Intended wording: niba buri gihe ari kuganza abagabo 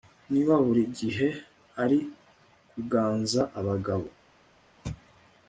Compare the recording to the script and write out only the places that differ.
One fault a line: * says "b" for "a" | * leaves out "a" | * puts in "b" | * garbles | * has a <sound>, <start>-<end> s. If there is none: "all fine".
all fine